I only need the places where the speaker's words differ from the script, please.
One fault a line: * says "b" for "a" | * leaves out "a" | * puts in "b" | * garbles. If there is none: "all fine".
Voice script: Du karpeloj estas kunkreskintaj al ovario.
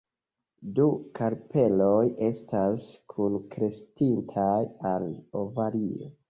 all fine